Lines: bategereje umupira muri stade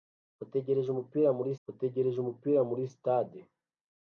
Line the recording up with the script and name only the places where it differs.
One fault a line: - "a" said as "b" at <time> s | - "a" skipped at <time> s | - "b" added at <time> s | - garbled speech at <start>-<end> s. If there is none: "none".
- "bategereje umupira muri" added at 1.7 s